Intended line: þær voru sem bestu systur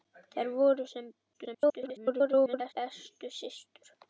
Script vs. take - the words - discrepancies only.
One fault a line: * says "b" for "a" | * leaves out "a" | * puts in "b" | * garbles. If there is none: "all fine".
* garbles